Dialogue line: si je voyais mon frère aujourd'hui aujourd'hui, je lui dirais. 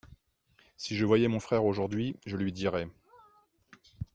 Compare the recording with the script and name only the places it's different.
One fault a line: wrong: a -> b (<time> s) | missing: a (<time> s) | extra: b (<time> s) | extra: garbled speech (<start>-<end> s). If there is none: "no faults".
missing: aujourd'hui (2.2 s)